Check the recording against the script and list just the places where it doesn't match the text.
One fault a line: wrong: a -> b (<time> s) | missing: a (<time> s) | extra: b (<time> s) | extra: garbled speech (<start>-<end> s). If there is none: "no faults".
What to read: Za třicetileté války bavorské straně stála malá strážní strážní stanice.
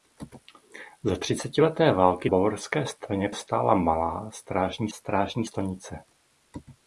no faults